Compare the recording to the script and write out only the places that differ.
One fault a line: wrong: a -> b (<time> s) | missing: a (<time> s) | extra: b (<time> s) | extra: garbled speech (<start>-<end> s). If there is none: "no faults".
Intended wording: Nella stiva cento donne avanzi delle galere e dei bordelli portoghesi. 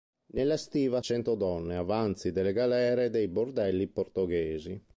no faults